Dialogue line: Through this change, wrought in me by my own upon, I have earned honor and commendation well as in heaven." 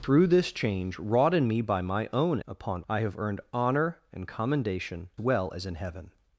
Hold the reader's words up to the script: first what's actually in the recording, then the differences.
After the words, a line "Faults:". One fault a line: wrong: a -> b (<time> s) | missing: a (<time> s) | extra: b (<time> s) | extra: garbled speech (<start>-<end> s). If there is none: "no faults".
Through this change, wrought in me by my own upon, I have earned honor and commendation well as in heaven."
Faults:
no faults